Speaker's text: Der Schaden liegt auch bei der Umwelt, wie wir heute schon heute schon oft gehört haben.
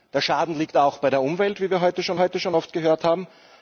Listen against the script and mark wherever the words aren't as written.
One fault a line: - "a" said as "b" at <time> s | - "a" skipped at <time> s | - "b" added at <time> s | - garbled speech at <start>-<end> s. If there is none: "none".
none